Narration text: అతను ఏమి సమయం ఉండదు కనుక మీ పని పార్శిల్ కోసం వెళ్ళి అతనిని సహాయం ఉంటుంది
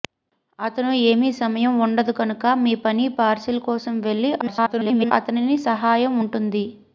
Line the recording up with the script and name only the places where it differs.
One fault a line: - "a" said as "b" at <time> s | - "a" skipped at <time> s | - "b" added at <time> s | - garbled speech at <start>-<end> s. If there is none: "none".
- garbled speech at 4.4-5.1 s